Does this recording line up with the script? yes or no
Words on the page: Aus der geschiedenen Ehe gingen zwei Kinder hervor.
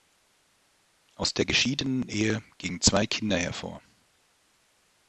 yes